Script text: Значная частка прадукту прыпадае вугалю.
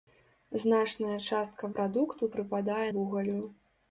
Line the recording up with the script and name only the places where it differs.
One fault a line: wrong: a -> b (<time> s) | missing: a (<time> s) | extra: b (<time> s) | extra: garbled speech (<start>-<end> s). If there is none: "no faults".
no faults